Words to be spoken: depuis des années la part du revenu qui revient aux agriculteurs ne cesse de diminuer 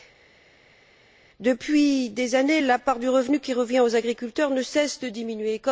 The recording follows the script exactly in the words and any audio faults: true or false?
true